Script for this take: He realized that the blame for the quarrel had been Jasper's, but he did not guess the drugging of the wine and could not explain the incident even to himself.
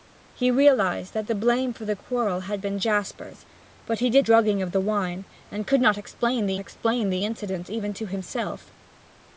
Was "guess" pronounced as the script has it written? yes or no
no